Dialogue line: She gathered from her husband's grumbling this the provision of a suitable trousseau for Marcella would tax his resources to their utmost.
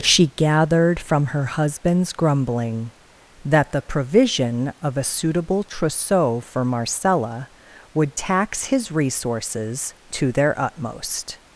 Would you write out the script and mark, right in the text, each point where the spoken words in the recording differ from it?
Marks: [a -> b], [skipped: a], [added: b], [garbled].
She gathered from her husband's grumbling [this -> that] the provision of a suitable trousseau for Marcella would tax his resources to their utmost.